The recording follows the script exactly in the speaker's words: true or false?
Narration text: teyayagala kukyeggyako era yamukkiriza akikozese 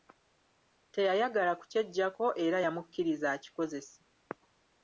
true